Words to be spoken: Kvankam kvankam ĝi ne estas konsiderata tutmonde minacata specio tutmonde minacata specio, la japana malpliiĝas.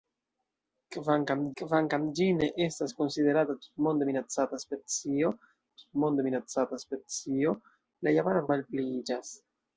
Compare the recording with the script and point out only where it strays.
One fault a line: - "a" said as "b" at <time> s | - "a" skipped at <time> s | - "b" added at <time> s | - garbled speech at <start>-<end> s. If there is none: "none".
none